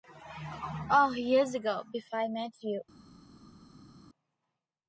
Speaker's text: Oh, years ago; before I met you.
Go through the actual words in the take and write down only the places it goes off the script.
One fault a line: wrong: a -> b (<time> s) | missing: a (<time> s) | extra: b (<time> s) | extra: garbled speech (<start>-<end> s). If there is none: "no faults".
no faults